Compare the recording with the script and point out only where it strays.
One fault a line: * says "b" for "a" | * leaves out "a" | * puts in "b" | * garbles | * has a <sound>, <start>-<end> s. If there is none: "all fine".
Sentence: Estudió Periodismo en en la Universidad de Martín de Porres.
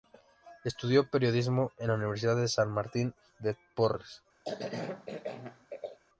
* leaves out "en"
* puts in "San"
* has a cough, 4.4-6.0 s